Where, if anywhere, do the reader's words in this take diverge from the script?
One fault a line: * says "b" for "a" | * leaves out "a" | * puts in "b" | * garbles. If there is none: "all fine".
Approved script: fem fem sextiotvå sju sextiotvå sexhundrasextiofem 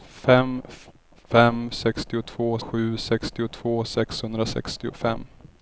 all fine